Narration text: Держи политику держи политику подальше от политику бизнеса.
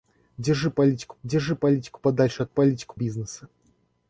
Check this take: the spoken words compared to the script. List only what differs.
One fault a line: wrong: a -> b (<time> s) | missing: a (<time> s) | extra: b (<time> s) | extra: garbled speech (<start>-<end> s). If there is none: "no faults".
no faults